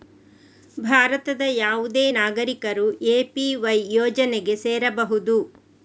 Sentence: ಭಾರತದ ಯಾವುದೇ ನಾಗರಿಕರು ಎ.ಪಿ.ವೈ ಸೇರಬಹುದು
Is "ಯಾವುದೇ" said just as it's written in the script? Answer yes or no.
yes